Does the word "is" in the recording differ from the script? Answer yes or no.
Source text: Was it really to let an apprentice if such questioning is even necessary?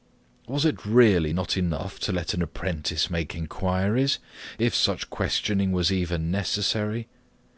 yes